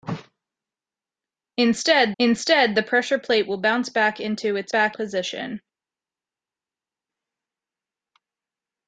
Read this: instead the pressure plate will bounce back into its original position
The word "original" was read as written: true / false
false